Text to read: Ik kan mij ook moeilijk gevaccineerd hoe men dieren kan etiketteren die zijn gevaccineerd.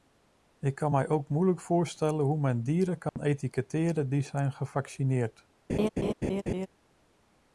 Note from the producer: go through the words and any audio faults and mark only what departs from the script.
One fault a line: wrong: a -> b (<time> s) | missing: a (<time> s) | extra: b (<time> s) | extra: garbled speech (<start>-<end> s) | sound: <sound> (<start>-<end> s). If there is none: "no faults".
wrong: gevaccineerd -> voorstellen (1.6 s)
sound: dropout (3.1-3.2 s)
sound: laugh (5.7-6.7 s)